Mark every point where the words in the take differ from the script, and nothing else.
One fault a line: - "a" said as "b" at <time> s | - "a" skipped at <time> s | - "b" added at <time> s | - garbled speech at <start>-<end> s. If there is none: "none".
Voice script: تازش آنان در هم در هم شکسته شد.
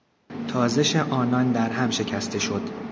- "در هم" skipped at 1.9 s